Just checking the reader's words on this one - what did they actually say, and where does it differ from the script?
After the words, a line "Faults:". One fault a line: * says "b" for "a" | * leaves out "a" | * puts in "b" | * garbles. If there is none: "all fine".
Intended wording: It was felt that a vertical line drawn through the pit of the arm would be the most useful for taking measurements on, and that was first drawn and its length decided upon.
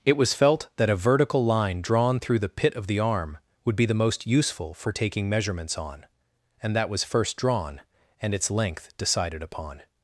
It was felt that a vertical line drawn through the pit of the arm would be the most useful for taking measurements on, and that was first drawn and its length decided upon.
Faults:
all fine